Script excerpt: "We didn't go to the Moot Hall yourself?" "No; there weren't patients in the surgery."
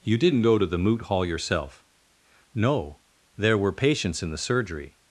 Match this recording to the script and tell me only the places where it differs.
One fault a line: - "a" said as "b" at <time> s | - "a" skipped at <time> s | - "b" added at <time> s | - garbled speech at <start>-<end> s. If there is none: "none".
- "We" said as "You" at 0.0 s
- "weren't" said as "were" at 3.6 s